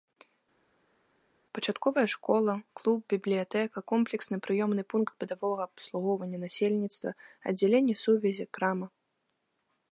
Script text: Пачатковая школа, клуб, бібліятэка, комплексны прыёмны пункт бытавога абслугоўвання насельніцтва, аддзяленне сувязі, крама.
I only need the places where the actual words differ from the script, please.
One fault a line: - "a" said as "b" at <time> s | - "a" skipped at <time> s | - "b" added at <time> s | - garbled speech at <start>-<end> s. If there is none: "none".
none